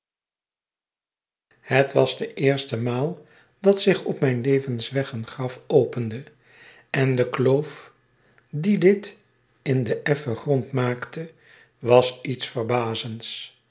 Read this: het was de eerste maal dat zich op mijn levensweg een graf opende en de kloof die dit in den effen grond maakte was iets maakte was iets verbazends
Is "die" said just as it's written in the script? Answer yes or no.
yes